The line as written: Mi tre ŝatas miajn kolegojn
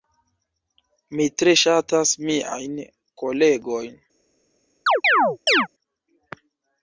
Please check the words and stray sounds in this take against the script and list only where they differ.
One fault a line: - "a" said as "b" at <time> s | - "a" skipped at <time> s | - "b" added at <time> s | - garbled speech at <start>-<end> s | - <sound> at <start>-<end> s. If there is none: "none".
- chirp at 4.9-5.7 s